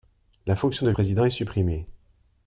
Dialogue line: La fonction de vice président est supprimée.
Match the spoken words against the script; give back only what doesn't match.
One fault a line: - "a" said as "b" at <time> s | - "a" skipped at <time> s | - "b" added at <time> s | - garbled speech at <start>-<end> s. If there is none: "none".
- "vice" skipped at 0.9 s